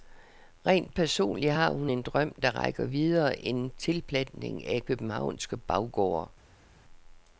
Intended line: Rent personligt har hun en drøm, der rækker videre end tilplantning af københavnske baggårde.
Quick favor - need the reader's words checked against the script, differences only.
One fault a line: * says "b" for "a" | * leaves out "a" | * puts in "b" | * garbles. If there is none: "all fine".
all fine